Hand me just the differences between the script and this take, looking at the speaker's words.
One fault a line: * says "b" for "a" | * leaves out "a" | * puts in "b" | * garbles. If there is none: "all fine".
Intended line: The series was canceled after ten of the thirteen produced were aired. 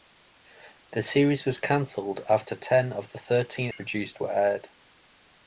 all fine